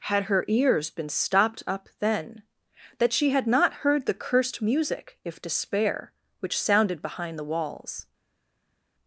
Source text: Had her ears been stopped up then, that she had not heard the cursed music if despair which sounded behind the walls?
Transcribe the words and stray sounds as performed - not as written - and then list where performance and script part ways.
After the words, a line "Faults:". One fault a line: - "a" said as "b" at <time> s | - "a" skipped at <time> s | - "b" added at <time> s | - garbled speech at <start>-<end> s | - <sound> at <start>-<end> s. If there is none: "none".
Had her ears been stopped up then, that she had not heard the cursed music if despair which sounded behind the walls?
Faults:
none